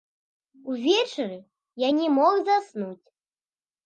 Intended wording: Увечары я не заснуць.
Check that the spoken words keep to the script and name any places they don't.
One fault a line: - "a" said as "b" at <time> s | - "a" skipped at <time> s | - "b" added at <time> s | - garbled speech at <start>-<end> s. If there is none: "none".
- "мог" added at 2.2 s